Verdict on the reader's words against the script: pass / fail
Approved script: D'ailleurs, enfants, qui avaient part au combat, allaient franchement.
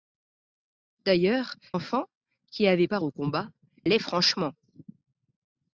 pass